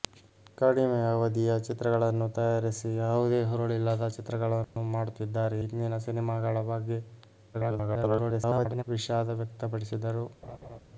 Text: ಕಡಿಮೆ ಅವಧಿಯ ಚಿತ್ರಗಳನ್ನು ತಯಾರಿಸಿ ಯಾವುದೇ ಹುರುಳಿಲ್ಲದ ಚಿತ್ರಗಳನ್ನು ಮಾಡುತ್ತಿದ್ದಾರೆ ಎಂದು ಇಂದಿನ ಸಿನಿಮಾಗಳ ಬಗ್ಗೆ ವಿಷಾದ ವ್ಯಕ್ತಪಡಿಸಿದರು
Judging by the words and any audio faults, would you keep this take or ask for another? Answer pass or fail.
fail